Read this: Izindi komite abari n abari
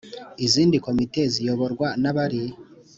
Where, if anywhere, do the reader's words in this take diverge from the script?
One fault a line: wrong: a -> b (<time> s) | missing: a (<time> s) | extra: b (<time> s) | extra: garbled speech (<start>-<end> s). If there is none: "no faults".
wrong: abari -> ziyoborwa (1.3 s)